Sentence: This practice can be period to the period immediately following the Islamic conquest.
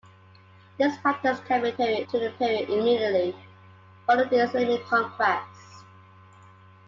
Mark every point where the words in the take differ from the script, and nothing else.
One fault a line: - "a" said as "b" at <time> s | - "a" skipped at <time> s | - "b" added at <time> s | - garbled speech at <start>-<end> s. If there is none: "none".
none